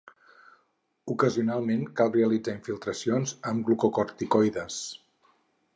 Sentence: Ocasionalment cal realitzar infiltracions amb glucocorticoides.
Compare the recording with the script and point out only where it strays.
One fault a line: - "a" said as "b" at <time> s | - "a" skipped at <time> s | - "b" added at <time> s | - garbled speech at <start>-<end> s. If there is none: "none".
none